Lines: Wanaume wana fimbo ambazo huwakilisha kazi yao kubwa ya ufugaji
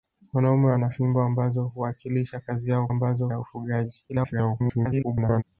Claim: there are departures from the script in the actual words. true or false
true